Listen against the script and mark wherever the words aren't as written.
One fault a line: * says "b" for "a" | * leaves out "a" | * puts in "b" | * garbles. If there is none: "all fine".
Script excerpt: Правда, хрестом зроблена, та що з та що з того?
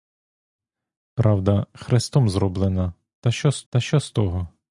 all fine